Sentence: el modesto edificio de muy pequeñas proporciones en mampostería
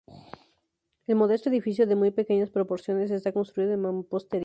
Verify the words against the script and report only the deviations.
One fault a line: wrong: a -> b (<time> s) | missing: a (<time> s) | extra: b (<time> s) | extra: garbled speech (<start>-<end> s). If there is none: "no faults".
extra: está construido (3.1 s)